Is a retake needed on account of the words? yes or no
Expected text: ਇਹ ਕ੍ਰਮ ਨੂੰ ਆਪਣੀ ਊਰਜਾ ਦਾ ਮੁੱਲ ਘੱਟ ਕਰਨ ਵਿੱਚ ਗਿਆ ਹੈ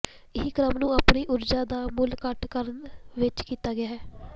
yes